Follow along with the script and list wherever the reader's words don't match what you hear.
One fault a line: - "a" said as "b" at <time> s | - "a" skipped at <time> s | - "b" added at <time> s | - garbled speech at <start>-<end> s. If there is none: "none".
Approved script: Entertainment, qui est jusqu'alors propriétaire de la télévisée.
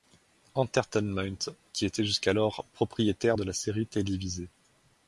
- "est" said as "était" at 1.9 s
- "série" added at 3.5 s